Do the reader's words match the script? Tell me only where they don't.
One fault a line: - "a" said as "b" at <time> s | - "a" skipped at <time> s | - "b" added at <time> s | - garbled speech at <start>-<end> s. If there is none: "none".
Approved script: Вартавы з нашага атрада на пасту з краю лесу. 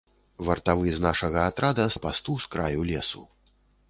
none